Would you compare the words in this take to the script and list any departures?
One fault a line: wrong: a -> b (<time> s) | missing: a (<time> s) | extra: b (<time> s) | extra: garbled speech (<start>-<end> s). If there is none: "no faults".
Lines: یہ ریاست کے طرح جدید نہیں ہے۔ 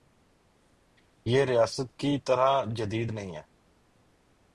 wrong: کے -> کی (2.0 s)